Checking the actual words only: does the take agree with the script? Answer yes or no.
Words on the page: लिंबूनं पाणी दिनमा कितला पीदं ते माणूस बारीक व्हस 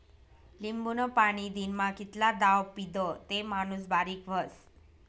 no